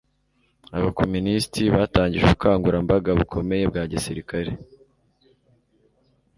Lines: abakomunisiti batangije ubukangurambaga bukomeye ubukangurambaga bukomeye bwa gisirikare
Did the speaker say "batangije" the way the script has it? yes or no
yes